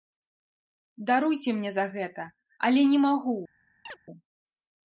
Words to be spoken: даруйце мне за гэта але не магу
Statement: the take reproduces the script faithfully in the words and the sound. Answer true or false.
false